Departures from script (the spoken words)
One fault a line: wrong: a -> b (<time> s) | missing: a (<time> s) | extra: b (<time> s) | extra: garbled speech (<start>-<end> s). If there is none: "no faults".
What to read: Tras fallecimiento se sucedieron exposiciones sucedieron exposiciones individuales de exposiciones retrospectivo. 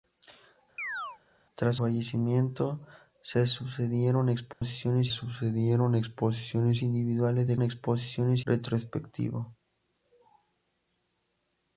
no faults